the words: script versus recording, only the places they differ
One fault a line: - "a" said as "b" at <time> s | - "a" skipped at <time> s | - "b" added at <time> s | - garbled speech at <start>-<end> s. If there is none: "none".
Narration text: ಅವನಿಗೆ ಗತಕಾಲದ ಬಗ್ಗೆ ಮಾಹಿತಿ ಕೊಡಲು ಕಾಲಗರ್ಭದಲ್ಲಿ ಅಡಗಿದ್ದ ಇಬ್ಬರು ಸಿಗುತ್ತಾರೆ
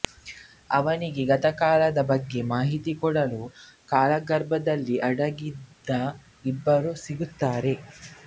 none